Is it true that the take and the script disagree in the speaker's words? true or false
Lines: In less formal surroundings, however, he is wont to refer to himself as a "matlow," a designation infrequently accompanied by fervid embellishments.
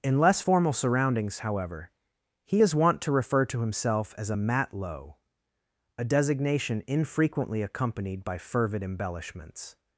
false